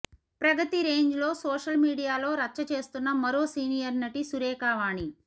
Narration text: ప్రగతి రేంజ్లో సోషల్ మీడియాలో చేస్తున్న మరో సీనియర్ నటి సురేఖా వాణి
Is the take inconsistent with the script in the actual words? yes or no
yes